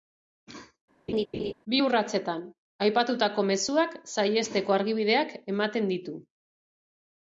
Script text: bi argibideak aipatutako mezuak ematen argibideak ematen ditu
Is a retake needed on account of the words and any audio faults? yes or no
yes